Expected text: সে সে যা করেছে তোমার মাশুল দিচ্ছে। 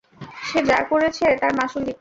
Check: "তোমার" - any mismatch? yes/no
yes